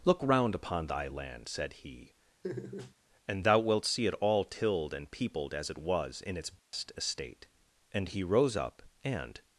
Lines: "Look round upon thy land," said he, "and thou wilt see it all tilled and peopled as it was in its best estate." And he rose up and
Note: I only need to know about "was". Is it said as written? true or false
true